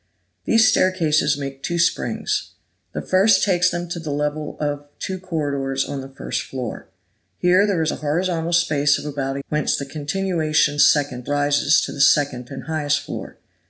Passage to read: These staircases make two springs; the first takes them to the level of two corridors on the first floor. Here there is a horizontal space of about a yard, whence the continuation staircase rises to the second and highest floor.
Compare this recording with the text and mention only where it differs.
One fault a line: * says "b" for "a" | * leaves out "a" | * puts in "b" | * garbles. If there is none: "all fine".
* leaves out "yard"
* says "second" for "staircase"